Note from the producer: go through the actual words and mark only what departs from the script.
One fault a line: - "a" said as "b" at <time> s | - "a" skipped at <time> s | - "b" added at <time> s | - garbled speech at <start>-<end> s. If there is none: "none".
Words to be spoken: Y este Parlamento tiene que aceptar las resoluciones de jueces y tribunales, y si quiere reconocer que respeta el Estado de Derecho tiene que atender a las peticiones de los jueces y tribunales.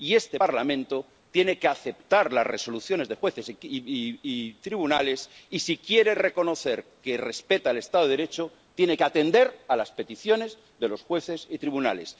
none